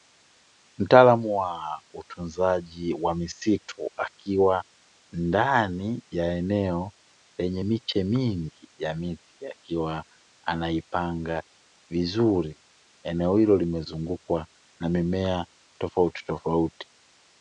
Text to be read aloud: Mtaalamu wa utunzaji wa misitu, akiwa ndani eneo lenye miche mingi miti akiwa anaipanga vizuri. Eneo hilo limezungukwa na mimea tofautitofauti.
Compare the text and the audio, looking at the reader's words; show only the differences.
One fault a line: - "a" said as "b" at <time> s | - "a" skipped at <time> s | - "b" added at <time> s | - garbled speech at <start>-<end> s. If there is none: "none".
- "ya" added at 6.1 s
- "ya" added at 8.8 s